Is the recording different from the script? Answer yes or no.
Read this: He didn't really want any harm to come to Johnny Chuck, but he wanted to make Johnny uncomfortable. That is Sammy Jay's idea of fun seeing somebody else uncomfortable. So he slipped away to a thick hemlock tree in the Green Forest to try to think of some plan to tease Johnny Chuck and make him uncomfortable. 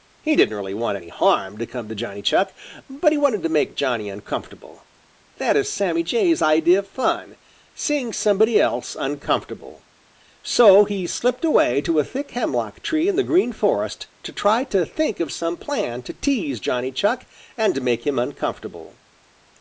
no